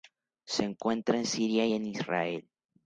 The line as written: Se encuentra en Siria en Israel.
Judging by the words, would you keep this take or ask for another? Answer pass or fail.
pass